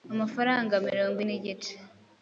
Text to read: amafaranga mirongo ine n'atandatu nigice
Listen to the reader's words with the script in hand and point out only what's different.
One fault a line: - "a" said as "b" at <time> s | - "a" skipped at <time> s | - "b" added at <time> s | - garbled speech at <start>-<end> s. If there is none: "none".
- "ine n'atandatu" skipped at 1.2 s